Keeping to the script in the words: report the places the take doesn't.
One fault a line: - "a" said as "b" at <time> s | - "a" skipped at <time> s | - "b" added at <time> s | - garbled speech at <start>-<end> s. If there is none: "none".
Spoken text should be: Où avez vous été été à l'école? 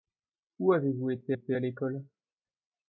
none